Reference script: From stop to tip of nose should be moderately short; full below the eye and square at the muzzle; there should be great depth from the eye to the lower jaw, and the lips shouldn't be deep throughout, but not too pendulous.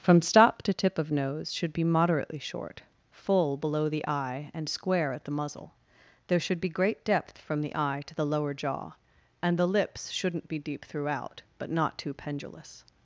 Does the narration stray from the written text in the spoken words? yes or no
no